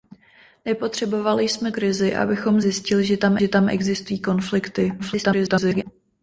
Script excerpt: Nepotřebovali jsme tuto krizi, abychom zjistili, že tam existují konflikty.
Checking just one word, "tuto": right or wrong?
wrong